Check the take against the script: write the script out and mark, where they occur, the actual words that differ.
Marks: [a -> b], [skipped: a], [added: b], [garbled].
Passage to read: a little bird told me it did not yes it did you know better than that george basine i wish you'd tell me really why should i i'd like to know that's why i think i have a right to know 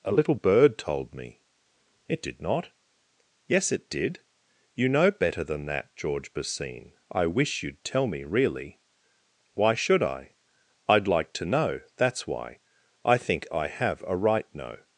a little bird told me it did not yes it did you know better than that george basine i wish you'd tell me really why should i i'd like to know that's why i think i have a right [skipped: to] know